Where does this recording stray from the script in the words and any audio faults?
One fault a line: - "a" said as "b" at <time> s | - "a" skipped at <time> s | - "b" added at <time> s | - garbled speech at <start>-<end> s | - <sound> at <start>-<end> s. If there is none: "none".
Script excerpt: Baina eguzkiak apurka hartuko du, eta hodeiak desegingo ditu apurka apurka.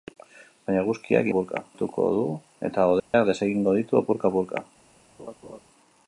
- dropout at 3.0-3.1 s
- laugh at 5.2-5.6 s